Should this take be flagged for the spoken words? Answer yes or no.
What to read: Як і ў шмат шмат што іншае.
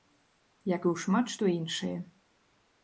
yes